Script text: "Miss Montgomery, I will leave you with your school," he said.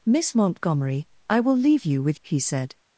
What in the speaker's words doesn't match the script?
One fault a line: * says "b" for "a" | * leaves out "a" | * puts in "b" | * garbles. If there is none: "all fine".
* leaves out "your school"